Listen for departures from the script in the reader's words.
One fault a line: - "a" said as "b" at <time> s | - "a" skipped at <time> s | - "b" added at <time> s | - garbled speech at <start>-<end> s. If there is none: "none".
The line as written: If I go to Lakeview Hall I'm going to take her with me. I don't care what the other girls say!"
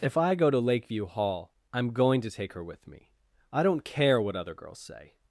- "the" skipped at 4.3 s